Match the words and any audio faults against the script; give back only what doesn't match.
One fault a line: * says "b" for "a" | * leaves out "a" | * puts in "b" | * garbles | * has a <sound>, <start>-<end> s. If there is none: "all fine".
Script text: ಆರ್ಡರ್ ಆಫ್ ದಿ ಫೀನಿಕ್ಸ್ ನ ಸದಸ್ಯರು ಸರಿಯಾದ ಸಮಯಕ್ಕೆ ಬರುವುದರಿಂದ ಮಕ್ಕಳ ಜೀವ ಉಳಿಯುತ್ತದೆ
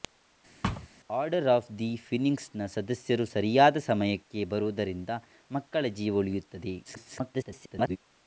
* has a thud, 0.6-0.9 s
* garbles